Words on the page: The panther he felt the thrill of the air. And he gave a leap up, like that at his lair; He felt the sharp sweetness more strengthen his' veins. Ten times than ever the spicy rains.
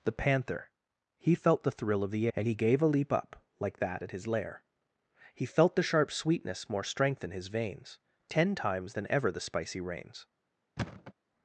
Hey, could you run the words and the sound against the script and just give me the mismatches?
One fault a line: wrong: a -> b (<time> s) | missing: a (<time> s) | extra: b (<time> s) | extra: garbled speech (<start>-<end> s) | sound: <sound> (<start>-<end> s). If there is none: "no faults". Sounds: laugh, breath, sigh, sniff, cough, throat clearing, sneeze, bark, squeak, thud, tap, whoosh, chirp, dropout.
missing: air (2.3 s)
sound: thud (10.8-11.1 s)